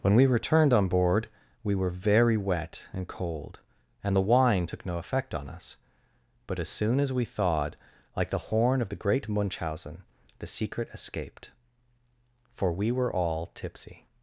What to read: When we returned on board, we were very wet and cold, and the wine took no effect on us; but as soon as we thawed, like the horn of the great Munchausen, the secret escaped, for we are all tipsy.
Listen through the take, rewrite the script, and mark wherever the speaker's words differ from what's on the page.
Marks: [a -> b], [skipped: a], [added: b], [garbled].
When we returned on board, we were very wet and cold, and the wine took no effect on us; but as soon as we thawed, like the horn of the great Munchausen, the secret escaped, for we [are -> were] all tipsy.